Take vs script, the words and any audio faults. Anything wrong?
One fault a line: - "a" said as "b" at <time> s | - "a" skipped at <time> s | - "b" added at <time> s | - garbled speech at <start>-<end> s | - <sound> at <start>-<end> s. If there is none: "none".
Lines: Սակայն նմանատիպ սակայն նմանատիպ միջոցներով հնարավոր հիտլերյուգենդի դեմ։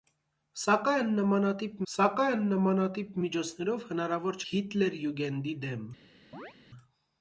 - chirp at 6.3-6.5 s